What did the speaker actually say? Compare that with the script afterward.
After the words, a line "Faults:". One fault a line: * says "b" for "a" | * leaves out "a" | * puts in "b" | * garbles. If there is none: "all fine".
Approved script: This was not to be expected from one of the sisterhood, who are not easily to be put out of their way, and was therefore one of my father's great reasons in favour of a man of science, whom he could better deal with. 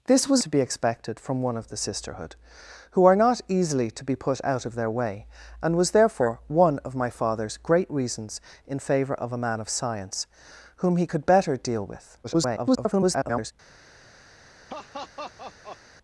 This was to be expected from one of the sisterhood, who are not easily to be put out of their way, and was therefore one of my father's great reasons in favour of a man of science, whom he could better deal with. [garbled]
Faults:
* leaves out "not"
* garbles